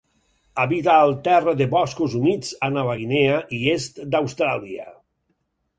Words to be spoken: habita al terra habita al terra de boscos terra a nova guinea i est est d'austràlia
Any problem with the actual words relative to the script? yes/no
yes